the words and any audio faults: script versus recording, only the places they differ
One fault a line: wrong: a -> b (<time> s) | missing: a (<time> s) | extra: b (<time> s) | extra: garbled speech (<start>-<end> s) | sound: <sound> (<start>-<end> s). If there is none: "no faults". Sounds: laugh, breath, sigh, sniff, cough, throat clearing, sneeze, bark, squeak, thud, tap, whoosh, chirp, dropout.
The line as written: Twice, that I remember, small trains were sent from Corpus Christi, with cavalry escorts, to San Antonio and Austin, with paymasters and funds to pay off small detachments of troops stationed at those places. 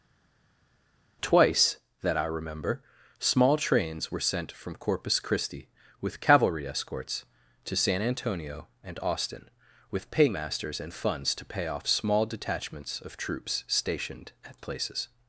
missing: those (14.6 s)